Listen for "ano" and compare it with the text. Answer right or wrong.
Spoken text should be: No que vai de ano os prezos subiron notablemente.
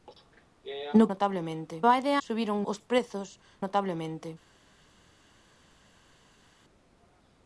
wrong